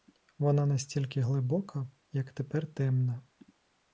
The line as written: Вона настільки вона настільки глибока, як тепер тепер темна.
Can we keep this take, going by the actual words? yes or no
no